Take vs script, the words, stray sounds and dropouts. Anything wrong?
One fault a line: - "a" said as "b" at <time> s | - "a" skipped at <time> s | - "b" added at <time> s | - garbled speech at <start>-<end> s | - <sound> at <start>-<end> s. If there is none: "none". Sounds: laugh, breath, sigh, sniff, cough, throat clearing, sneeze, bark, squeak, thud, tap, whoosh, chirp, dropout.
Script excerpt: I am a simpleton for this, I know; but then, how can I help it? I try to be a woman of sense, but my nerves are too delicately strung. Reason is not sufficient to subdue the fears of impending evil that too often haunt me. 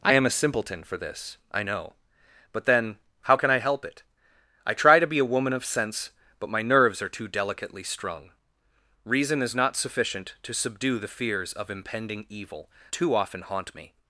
- "that" skipped at 12.7 s